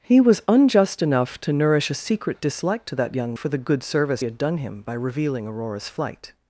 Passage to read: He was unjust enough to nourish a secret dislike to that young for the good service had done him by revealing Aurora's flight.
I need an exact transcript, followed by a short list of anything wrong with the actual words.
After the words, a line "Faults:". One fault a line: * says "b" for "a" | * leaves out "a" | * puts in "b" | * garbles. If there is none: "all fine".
He was unjust enough to nourish a secret dislike to that young for the good service had done him by revealing Aurora's flight.
Faults:
all fine